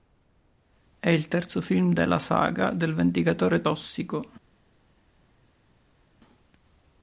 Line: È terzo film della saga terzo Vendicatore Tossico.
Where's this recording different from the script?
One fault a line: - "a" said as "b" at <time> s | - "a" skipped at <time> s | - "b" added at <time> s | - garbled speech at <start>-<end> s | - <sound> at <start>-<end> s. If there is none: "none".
- "il" added at 1.1 s
- "terzo" said as "del" at 2.7 s